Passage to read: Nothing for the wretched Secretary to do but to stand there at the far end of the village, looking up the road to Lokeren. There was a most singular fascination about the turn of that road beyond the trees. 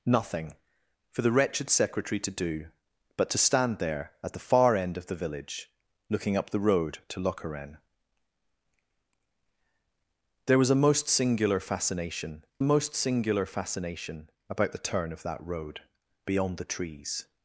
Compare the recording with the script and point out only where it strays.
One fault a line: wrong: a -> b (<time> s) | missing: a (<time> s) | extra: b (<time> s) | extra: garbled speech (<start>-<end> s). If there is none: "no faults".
extra: most singular fascination (12.6 s)